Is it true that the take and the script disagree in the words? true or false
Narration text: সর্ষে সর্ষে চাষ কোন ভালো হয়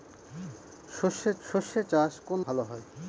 false